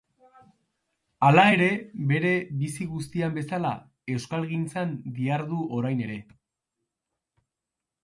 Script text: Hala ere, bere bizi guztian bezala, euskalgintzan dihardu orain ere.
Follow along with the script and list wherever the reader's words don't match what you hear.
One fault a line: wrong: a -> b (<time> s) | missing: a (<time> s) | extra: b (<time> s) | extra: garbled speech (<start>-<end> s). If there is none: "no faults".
no faults